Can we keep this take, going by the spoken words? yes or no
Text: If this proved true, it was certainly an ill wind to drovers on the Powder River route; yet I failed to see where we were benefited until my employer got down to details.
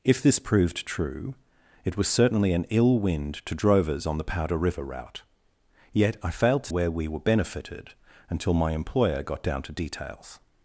no